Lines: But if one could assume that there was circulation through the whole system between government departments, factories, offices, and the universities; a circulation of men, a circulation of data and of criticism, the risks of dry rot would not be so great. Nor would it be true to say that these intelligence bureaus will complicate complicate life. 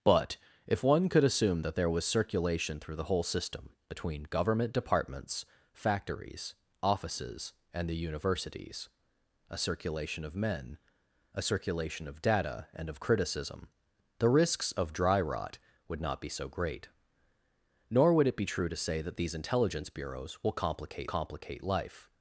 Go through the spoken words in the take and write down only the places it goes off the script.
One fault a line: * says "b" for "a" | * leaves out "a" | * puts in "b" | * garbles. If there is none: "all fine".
all fine